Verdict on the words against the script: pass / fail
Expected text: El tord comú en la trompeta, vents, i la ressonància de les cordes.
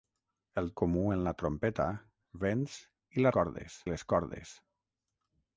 fail